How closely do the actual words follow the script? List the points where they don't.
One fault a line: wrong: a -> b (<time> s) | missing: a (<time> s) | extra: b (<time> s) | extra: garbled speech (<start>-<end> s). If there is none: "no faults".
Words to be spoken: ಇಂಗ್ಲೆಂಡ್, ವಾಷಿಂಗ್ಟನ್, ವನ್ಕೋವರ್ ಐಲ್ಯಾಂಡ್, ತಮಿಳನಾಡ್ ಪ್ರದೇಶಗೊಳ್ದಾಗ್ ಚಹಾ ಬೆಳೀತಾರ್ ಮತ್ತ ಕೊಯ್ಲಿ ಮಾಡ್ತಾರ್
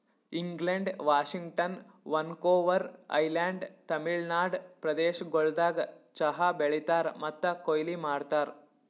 no faults